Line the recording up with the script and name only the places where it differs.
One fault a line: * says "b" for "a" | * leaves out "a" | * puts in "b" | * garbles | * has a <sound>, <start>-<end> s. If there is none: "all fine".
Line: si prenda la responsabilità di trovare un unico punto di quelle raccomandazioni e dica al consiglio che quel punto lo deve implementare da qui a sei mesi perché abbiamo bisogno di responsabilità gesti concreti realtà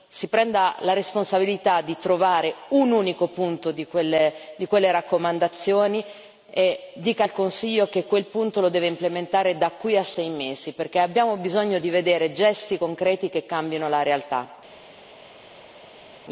* says "vedere" for "responsabilità"
* puts in "che cambino la"